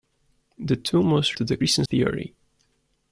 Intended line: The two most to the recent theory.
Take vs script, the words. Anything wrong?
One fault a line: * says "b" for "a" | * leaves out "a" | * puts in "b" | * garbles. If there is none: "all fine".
all fine